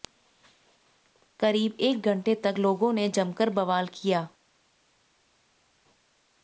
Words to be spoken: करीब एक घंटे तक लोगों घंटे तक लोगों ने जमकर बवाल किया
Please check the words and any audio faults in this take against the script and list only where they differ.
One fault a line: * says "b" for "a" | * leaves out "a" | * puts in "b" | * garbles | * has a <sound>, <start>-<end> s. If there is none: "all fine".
* leaves out "घंटे तक लोगों"